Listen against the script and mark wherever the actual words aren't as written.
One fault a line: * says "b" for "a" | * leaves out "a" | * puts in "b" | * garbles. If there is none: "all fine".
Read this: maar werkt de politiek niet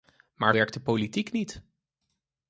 all fine